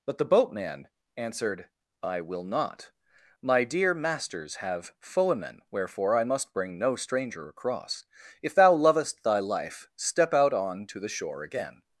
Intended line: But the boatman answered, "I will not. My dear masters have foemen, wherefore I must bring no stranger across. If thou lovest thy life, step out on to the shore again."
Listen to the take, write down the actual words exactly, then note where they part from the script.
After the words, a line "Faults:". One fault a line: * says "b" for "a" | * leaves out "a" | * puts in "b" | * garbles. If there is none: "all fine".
But the boatman answered, "I will not. My dear masters have foemen, wherefore I must bring no stranger across. If thou lovest thy life, step out on to the shore again."
Faults:
all fine